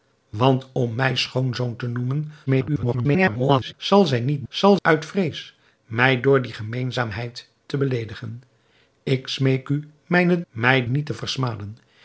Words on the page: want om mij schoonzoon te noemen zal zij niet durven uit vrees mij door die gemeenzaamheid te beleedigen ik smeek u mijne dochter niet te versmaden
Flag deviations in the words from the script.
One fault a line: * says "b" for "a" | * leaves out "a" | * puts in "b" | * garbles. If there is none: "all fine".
* garbles
* says "zal" for "durven"
* says "mij" for "dochter"